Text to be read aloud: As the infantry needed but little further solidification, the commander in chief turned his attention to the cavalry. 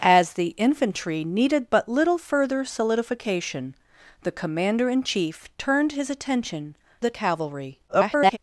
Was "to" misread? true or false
true